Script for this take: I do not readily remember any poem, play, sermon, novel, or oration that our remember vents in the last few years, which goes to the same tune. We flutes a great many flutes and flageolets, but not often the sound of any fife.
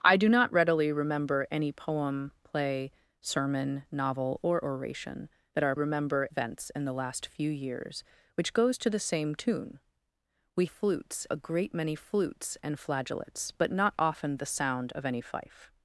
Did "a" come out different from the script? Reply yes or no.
no